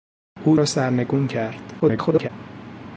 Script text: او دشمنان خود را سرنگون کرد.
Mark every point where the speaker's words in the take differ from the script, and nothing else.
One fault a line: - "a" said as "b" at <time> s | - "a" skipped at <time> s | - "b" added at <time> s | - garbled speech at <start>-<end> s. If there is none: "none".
- "دشمنان خود" skipped at 0.6 s
- garbled speech at 1.8-2.3 s